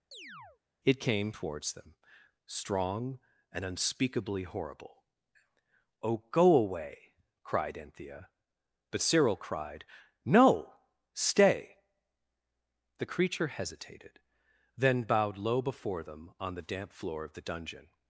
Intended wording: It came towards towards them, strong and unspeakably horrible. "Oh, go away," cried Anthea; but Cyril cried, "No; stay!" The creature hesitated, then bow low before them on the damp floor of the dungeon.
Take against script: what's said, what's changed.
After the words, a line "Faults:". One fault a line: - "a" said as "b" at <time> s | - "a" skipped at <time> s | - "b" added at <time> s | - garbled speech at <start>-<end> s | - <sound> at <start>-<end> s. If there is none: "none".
It came towards them, strong and unspeakably horrible. "Oh, go away," cried Anthea; but Cyril cried, "No; stay!" The creature hesitated, then bowed low before them on the damp floor of the dungeon.
Faults:
- chirp at 0.1-0.6 s
- "towards" skipped at 1.7 s
- "bow" said as "bowed" at 15.0 s